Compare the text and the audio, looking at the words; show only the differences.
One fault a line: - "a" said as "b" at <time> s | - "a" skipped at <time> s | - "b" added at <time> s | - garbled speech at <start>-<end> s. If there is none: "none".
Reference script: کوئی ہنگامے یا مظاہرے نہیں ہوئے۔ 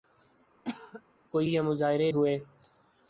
- "ہنگامے" skipped at 1.5 s
- "نہیں" skipped at 2.1 s